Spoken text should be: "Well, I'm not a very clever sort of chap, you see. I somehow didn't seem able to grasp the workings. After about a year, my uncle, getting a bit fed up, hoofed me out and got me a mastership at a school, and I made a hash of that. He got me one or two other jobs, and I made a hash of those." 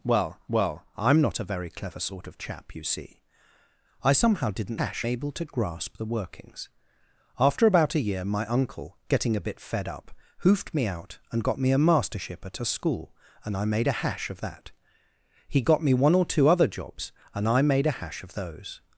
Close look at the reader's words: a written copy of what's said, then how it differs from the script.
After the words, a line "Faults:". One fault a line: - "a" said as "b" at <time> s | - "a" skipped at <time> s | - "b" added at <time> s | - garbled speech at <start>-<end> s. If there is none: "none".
"Well well, I'm not a very clever sort of chap, you see. I somehow didn't hash able to grasp the workings. After about a year, my uncle, getting a bit fed up, hoofed me out and got me a mastership at a school, and I made a hash of that. He got me one or two other jobs, and I made a hash of those."
Faults:
- "well" added at 0.5 s
- "seem" said as "hash" at 4.8 s